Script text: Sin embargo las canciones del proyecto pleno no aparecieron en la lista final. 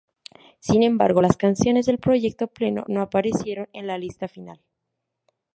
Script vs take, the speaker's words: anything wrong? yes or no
no